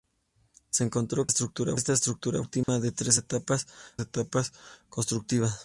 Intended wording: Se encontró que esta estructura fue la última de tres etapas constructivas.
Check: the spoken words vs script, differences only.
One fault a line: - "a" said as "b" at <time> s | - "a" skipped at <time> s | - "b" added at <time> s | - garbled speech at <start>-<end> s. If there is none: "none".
- "que" said as "estructura" at 1.3 s
- "fue" skipped at 2.4 s
- "etapas" added at 4.0 s